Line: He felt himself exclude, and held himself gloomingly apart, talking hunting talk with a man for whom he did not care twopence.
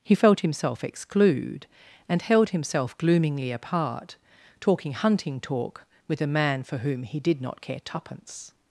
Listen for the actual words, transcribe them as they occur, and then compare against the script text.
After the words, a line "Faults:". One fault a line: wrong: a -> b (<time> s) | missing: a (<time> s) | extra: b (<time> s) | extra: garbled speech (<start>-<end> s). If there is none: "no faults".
He felt himself exclude, and held himself gloomingly apart, talking hunting talk with a man for whom he did not care twopence.
Faults:
no faults